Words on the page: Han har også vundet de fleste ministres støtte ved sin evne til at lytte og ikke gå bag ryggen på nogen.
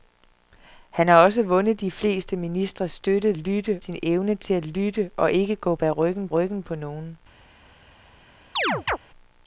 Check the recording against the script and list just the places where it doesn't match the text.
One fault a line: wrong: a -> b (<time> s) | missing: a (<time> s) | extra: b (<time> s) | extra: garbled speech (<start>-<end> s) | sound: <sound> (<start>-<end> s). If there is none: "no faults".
wrong: ved -> lytte (3.4 s)
extra: ryggen (6.3 s)
sound: chirp (8.6-9.0 s)